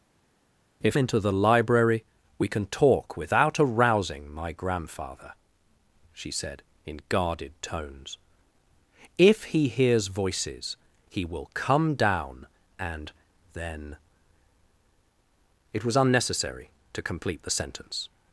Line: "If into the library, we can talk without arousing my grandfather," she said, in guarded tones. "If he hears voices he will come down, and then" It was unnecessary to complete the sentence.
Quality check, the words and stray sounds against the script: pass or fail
pass